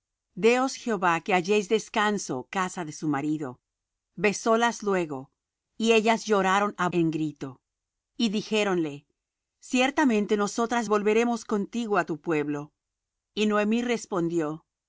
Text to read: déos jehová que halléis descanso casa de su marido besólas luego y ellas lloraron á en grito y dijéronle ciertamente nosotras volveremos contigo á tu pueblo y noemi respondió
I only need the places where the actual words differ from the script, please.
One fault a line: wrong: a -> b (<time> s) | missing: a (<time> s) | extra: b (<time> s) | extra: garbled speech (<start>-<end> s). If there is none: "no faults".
no faults